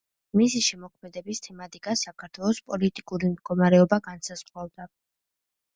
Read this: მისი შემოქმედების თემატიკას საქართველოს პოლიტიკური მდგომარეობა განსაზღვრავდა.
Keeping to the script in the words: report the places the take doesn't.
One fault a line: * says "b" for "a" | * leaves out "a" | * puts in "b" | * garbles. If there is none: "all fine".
all fine